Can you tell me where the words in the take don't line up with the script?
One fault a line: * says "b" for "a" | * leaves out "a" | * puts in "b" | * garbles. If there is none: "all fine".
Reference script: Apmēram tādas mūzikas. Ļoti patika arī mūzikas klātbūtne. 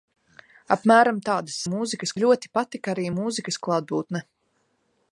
all fine